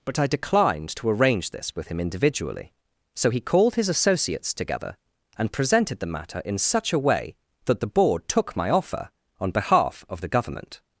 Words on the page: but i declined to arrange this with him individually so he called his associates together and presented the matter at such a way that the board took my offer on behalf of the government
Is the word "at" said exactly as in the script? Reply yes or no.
no